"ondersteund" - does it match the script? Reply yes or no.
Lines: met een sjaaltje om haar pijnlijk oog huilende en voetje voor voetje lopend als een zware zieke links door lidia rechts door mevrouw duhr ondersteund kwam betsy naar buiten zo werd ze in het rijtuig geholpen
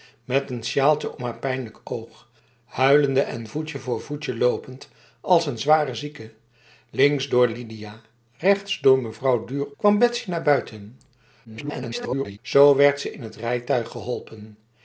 no